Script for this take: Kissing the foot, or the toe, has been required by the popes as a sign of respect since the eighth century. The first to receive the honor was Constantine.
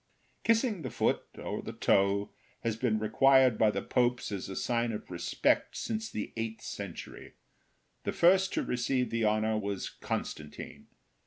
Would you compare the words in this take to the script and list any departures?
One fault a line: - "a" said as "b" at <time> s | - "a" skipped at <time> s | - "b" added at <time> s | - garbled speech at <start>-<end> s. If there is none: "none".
none